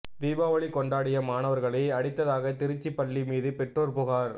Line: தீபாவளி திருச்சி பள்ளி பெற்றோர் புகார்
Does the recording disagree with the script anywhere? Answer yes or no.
yes